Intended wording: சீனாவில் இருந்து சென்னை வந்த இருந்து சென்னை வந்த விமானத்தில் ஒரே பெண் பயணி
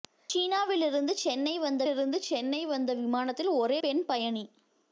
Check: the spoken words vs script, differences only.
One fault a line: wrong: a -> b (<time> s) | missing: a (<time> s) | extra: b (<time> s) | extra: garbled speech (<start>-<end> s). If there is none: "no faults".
no faults